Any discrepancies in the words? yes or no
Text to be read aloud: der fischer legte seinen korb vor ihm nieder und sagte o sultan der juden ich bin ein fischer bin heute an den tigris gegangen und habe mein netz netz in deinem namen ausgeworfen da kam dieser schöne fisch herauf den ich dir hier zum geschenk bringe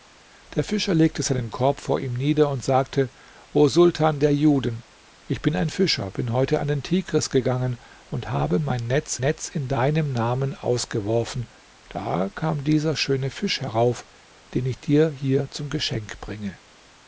no